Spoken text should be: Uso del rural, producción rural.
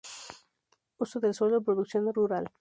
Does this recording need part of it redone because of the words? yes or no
yes